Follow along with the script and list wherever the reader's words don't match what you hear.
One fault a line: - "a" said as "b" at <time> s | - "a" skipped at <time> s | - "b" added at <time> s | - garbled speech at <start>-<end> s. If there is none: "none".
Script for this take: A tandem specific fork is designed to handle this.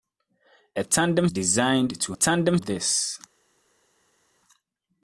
- "specific fork is" skipped at 1.3 s
- "handle" said as "tandem" at 2.1 s